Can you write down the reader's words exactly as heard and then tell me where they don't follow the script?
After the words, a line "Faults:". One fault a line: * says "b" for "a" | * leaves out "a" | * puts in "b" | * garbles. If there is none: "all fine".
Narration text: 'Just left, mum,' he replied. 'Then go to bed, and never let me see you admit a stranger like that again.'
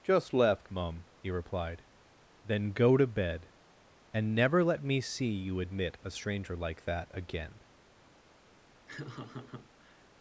'Just left, mum,' he replied. 'Then go to bed, and never let me see you admit a stranger like that again.'
Faults:
all fine